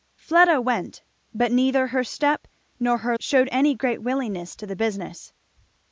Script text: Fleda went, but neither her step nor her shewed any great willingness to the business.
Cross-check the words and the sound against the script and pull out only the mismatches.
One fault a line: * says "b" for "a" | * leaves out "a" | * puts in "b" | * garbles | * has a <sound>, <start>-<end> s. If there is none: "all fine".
all fine